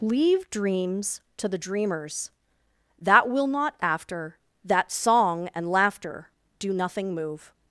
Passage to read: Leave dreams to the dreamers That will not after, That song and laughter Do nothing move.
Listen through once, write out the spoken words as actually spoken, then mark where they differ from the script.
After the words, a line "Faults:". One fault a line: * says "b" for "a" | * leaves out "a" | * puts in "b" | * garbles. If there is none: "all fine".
Leave dreams to the dreamers That will not after, That song and laughter Do nothing move.
Faults:
all fine